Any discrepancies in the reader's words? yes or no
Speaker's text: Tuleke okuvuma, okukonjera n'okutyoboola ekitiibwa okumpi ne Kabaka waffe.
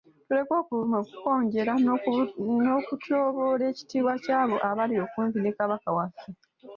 yes